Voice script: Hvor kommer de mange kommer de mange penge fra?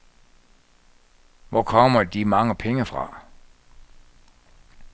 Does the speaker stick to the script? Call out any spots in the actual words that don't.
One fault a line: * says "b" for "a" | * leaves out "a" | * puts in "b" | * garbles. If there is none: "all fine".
* leaves out "kommer de mange"